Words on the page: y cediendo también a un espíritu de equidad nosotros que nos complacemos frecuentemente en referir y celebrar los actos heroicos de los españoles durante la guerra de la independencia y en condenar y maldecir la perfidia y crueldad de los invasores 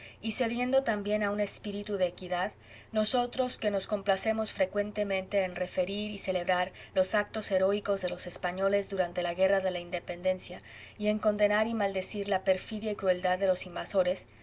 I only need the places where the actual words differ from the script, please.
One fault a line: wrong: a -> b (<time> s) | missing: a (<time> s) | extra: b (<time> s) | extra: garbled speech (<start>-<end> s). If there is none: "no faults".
no faults